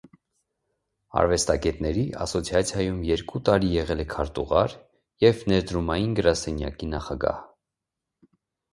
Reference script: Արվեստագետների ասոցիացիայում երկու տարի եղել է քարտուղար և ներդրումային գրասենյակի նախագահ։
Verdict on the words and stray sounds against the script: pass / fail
pass